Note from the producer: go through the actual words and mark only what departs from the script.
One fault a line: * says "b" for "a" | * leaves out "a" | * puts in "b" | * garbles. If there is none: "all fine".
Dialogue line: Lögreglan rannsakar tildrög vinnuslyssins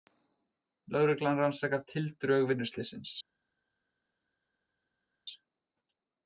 all fine